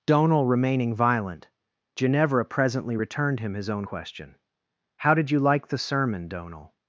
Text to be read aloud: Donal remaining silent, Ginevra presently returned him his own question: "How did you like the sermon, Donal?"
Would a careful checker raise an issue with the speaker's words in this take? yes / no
yes